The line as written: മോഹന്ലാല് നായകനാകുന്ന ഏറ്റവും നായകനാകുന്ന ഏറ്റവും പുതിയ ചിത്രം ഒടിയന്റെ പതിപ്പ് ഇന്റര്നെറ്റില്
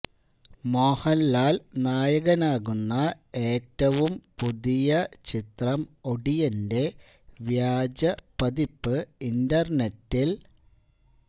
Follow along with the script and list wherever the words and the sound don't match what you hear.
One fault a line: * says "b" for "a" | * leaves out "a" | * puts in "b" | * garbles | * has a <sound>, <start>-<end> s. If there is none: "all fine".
* leaves out "നായകനാകുന്ന ഏറ്റവും"
* puts in "വ്യാജ"